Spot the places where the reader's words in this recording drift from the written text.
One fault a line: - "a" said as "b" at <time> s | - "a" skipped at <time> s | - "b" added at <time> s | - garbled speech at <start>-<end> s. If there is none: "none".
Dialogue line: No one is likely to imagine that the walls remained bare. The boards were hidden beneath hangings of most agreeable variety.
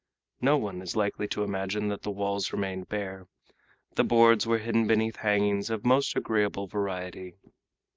none